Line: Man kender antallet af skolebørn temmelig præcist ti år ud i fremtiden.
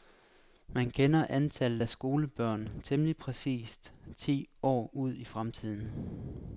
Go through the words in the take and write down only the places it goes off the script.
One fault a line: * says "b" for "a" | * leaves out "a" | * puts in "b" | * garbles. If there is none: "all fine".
all fine